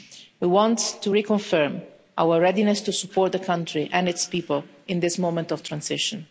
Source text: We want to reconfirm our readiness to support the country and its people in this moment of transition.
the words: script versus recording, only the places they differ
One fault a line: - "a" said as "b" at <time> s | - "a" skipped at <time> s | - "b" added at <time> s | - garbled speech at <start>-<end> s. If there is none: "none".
none